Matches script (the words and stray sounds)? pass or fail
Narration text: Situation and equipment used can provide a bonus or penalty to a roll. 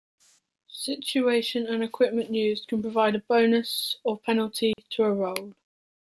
fail